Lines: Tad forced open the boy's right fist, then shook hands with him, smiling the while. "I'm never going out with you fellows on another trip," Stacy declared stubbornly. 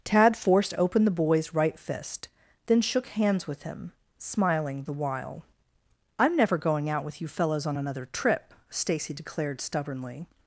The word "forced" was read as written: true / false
true